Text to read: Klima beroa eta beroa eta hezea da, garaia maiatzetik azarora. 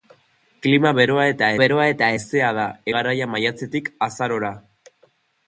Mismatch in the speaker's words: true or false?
false